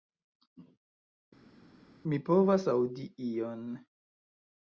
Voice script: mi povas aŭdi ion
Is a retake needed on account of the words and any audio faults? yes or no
no